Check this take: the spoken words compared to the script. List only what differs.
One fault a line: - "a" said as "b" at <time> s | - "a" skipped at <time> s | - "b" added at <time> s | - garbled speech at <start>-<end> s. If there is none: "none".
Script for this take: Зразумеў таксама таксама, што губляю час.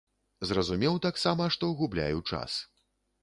- "таксама" skipped at 1.5 s